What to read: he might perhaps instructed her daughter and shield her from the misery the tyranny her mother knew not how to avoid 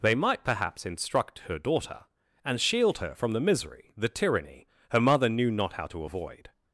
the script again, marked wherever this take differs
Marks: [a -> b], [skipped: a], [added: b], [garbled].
[he -> they] might perhaps [instructed -> instruct] her daughter and shield her from the misery the tyranny her mother knew not how to avoid